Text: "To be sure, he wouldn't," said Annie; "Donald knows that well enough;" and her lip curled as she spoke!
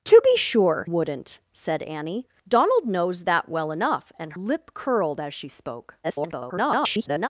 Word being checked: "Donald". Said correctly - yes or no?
yes